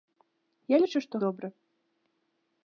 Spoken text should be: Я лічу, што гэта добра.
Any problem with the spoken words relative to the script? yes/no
yes